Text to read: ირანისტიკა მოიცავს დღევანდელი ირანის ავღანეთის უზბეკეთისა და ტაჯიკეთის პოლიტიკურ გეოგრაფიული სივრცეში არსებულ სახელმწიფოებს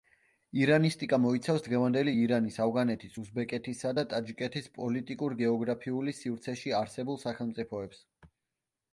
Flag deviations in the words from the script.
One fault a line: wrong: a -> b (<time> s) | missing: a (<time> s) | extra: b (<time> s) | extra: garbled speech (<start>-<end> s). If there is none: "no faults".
no faults